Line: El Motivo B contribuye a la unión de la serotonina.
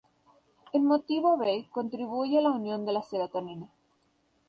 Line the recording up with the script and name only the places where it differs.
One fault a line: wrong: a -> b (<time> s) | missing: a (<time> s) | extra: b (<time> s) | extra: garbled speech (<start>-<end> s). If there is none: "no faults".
no faults